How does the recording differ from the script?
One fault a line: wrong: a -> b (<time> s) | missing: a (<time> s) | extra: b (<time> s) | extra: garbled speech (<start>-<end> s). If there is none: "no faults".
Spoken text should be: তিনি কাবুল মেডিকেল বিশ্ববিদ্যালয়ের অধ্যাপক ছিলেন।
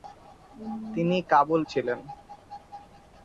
missing: মেডিকেল বিশ্ববিদ্যালয়ের অধ্যাপক (1.6 s)